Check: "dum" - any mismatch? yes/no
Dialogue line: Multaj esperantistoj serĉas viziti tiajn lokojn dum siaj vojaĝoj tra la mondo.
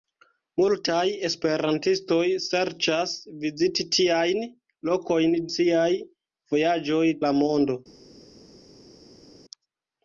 yes